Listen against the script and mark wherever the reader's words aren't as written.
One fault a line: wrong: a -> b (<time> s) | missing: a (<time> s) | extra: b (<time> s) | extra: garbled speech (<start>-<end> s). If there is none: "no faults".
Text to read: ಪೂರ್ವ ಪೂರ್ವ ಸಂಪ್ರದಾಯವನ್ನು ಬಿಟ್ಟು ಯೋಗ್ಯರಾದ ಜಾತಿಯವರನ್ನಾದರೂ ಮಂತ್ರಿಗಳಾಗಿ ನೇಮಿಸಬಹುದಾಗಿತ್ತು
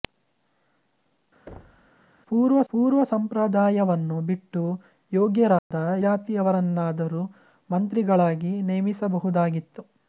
no faults